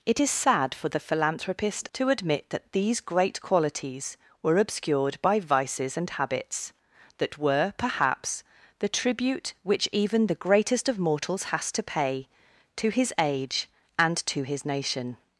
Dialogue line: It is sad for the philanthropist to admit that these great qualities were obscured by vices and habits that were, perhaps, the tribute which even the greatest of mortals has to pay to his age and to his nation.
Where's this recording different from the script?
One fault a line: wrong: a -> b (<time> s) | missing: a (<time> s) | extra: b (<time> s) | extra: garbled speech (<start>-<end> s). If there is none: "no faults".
no faults